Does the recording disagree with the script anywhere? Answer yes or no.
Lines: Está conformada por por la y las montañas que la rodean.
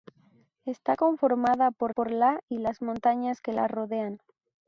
no